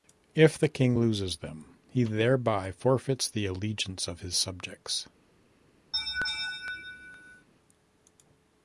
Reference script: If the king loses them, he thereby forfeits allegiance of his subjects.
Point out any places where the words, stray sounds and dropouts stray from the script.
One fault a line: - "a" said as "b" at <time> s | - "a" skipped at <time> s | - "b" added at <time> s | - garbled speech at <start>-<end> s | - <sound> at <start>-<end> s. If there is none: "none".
- "the" added at 3.3 s
- laugh at 5.9-7.5 s